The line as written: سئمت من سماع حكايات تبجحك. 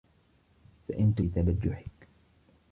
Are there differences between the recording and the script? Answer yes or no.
yes